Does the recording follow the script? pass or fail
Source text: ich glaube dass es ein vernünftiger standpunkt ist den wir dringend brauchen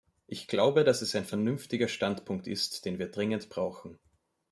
pass